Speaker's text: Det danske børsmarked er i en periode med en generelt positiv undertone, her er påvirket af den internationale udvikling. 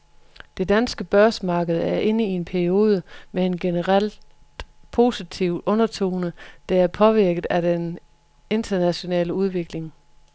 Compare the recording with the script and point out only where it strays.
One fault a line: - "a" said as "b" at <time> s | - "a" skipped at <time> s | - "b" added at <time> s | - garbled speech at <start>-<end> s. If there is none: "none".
- "inde" added at 2.0 s
- "her" said as "der" at 6.7 s